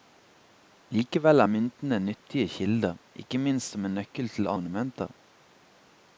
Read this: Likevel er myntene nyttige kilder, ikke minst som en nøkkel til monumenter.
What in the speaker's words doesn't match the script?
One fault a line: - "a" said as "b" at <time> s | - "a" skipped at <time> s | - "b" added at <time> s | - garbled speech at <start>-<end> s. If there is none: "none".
none